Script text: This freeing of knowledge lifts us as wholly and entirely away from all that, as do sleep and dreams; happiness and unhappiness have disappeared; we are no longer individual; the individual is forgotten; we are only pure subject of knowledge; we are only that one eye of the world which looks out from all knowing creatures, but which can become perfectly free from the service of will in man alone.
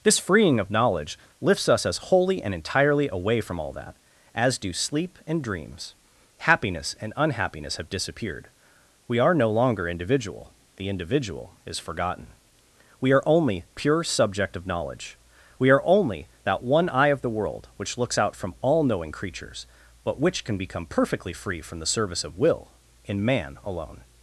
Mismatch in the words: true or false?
false